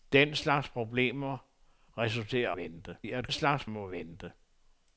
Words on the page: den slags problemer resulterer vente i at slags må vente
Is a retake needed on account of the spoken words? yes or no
no